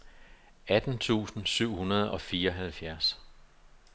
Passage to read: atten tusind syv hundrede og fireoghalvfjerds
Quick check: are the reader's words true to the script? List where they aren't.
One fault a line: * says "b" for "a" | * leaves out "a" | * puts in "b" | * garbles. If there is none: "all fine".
all fine